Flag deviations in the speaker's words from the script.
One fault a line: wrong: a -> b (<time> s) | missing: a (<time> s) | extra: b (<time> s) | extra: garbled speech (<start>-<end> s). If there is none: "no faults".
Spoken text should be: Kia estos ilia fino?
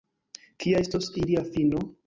no faults